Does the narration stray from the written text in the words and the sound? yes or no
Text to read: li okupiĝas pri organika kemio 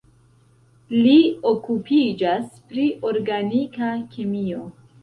no